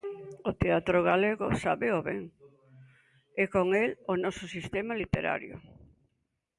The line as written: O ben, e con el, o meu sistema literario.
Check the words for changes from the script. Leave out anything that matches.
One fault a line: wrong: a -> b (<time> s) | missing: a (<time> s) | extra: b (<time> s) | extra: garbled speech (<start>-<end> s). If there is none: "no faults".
extra: teatro galego sábeo (0.6 s)
wrong: meu -> noso (4.2 s)